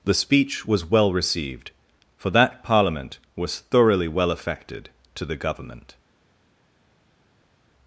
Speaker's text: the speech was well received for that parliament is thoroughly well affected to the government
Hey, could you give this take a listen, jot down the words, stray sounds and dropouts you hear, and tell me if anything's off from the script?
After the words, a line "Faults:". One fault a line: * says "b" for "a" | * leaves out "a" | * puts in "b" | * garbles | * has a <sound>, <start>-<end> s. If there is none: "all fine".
the speech was well received for that parliament was thoroughly well affected to the government
Faults:
* says "was" for "is"